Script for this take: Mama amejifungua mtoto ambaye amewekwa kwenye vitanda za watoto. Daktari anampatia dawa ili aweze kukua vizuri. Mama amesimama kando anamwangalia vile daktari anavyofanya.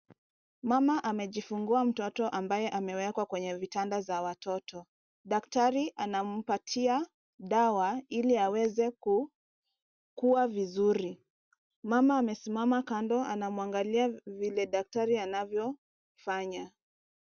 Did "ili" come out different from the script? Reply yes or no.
no